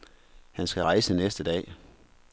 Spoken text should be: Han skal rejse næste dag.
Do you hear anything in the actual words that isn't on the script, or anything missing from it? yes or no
no